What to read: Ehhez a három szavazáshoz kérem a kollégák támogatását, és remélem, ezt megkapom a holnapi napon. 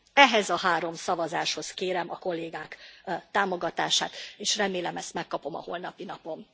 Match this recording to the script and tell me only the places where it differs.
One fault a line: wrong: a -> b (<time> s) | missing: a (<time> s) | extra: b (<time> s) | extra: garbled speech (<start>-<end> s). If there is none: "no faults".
no faults